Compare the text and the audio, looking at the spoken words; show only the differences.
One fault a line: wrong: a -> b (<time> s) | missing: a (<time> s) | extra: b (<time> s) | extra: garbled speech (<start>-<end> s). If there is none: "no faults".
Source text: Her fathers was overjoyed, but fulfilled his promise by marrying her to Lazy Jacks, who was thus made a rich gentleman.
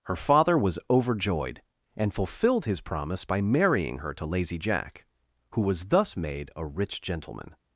wrong: fathers -> father (0.1 s)
wrong: but -> and (1.9 s)
wrong: Jacks -> Jack (4.6 s)